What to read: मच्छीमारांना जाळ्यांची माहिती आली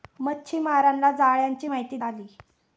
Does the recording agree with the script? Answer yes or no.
yes